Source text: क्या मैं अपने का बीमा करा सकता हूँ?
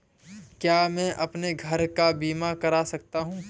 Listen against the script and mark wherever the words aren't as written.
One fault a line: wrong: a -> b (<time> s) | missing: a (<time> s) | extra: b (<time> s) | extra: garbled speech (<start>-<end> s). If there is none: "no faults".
extra: घर (1.5 s)